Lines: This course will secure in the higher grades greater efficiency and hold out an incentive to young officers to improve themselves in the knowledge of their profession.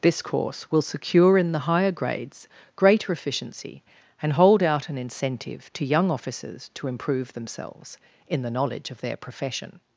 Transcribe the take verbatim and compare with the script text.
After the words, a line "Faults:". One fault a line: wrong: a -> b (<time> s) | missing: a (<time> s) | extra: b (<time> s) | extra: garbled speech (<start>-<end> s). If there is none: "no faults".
This course will secure in the higher grades greater efficiency and hold out an incentive to young officers to improve themselves in the knowledge of their profession.
Faults:
no faults